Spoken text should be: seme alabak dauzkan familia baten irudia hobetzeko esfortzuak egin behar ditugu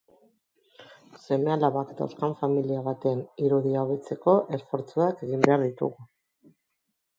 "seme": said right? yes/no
yes